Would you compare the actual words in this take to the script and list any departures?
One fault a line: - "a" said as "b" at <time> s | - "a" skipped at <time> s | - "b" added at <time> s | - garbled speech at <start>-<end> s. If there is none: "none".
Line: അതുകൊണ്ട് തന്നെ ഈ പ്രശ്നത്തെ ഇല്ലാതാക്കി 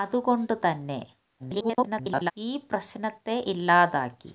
- garbled speech at 1.4-2.3 s